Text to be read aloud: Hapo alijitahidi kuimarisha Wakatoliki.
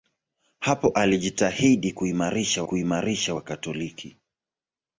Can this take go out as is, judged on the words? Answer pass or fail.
fail